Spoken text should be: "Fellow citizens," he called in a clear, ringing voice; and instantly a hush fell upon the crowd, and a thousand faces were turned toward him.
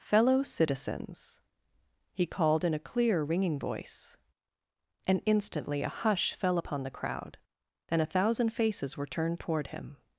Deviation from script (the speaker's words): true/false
false